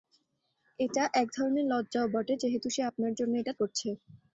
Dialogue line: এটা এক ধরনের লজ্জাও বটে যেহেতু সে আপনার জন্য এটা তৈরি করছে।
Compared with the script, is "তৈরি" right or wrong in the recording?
wrong